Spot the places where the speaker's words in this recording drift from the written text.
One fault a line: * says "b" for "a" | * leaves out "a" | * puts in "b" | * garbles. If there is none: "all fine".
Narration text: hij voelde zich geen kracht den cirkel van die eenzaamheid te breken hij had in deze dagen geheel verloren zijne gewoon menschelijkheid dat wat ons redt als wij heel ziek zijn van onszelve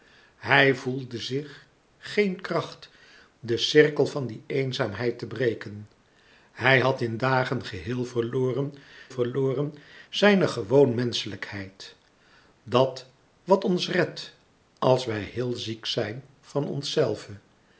* leaves out "deze"
* puts in "verloren"